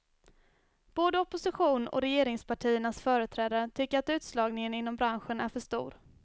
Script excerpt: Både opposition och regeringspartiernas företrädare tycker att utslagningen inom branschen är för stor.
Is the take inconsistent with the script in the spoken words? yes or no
no